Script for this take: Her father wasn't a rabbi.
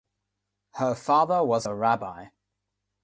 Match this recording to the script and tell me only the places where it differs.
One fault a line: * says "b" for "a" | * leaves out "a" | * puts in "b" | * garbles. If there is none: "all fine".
* says "was" for "wasn't"